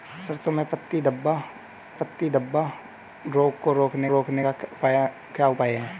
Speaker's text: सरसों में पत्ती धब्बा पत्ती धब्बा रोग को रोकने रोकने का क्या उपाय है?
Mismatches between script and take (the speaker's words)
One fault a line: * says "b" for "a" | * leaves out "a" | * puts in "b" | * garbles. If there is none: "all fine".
all fine